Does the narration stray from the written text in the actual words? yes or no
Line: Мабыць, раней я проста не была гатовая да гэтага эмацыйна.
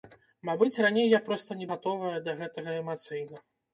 yes